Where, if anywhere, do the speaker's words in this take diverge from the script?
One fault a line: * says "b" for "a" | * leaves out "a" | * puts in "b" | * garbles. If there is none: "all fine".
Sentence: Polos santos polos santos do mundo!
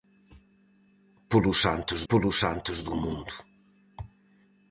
all fine